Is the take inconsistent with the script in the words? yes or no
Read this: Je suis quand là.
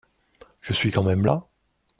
yes